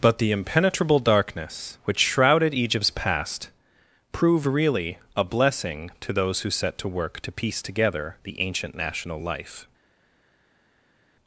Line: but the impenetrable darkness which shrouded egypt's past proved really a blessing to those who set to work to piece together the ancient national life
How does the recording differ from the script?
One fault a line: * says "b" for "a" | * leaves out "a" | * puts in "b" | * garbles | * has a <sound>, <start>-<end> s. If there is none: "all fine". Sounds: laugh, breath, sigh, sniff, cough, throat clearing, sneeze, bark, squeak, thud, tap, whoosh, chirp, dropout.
all fine